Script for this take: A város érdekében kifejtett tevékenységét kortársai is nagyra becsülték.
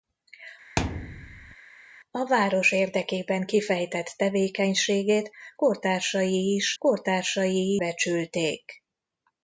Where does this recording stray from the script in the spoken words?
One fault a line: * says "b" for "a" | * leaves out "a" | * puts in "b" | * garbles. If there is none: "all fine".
* says "kortársai" for "nagyra"